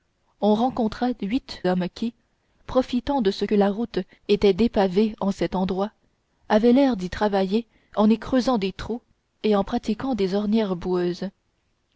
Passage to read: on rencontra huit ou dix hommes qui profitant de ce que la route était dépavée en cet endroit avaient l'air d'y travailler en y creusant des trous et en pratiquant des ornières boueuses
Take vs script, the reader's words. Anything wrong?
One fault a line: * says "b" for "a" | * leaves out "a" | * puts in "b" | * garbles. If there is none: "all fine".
* leaves out "ou dix"